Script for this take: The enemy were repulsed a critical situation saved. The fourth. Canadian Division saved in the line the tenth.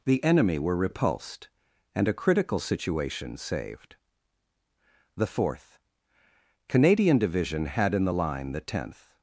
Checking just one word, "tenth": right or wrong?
right